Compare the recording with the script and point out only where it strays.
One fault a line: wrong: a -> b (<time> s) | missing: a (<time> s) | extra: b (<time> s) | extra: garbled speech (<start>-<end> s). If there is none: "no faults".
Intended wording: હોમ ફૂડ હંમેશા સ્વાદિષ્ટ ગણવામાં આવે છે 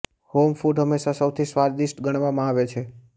extra: સૌથી (1.2 s)